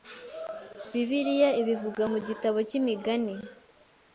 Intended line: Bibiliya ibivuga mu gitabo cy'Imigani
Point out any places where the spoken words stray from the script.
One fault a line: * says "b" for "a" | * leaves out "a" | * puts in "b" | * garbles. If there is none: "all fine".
all fine